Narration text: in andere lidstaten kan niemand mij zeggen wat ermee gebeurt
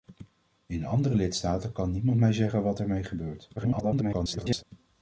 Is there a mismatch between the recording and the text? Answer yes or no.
yes